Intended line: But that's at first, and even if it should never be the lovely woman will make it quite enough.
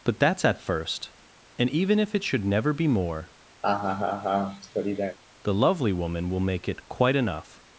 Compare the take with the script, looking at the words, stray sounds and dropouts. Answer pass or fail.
fail